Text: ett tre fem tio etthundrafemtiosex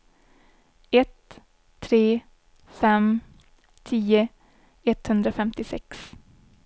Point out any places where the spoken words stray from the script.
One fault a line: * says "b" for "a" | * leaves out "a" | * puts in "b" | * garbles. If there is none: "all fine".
all fine